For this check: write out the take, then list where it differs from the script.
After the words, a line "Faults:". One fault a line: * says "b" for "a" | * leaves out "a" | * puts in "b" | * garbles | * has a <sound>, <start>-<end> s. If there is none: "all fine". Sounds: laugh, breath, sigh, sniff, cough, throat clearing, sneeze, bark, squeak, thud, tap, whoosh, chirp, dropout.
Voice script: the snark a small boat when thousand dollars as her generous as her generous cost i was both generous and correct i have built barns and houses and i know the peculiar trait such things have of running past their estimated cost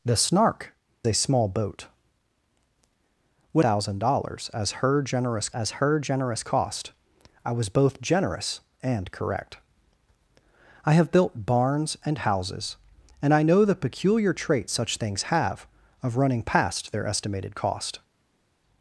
the snark a small boat when thousand dollars as her generous as her generous cost i was both generous and correct i have built barns and houses and i know the peculiar trait such things have of running past their estimated cost
Faults:
all fine